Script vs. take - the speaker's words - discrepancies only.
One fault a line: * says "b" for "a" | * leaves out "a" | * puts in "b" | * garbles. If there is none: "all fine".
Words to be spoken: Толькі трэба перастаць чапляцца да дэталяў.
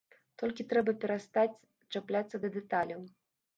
all fine